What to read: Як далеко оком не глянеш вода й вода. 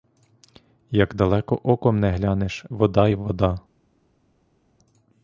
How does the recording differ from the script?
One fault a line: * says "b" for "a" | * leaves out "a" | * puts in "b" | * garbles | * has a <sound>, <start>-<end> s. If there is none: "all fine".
all fine